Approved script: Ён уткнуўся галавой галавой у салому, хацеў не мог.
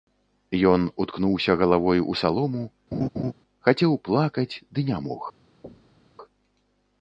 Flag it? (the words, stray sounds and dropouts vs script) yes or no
yes